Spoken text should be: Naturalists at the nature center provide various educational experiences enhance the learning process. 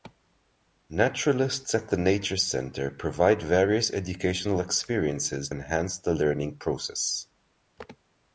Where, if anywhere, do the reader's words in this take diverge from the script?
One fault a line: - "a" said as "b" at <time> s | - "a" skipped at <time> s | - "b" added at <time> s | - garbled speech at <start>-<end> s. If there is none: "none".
none